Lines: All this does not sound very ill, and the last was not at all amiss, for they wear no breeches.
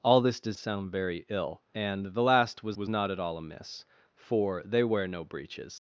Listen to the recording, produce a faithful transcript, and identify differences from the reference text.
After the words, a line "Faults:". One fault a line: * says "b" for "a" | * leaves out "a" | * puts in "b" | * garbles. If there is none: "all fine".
All this does sound very ill, and the last was was not at all amiss, for they wear no breeches.
Faults:
* leaves out "not"
* puts in "was"